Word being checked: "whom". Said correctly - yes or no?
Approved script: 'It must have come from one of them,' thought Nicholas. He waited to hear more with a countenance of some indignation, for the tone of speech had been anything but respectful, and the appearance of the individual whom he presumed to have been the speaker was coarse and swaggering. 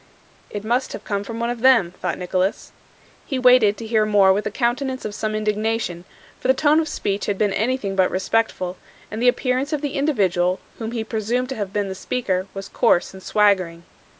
yes